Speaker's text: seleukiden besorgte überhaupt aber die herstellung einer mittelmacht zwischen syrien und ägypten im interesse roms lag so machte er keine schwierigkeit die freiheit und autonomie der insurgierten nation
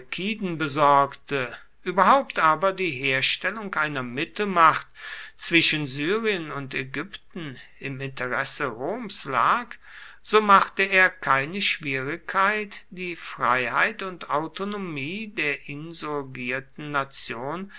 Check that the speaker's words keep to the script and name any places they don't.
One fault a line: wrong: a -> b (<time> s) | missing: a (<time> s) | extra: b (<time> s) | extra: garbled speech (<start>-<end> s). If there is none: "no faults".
no faults